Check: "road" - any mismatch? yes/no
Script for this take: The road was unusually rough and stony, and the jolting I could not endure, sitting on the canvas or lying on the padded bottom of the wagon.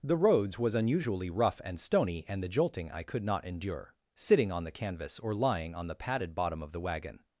yes